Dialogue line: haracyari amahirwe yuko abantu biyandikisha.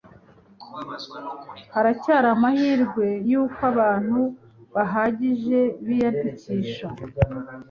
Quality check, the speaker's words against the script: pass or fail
fail